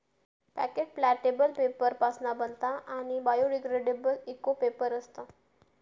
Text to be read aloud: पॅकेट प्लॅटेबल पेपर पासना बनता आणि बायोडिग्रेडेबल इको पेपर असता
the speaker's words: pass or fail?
pass